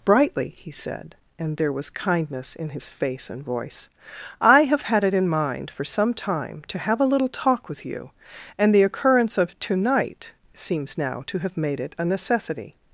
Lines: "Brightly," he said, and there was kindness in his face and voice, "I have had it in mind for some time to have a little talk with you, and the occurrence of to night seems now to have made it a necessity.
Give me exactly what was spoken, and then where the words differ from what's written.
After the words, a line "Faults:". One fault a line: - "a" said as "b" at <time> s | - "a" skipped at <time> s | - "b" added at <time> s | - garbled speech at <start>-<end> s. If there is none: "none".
"Brightly," he said, and there was kindness in his face and voice, "I have had it in mind for some time to have a little talk with you, and the occurrence of to night seems now to have made it a necessity.
Faults:
none